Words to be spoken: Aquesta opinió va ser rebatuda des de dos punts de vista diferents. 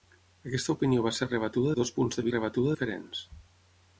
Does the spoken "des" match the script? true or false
false